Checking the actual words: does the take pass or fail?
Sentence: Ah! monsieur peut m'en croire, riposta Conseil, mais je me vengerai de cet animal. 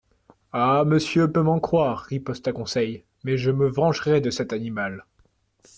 pass